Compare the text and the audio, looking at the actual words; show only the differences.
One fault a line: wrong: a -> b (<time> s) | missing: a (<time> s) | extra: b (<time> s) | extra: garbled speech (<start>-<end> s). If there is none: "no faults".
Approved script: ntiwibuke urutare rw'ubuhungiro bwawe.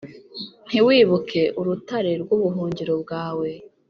no faults